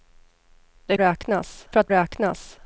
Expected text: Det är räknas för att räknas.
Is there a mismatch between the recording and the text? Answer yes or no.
no